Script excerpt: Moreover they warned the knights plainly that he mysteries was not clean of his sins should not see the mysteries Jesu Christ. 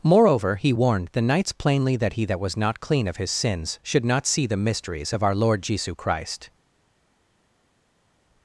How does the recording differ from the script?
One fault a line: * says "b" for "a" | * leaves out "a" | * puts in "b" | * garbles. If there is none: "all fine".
* says "he" for "they"
* says "that" for "mysteries"
* puts in "of our Lord"